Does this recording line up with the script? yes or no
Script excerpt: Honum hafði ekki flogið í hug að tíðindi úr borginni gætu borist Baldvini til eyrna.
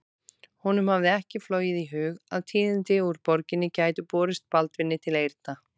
yes